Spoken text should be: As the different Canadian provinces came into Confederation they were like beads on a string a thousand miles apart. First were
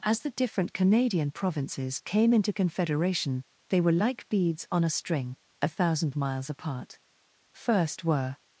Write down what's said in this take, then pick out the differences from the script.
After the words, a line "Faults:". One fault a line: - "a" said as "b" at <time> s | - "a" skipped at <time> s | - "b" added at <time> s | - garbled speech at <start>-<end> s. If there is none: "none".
As the different Canadian provinces came into Confederation they were like beads on a string a thousand miles apart. First were
Faults:
none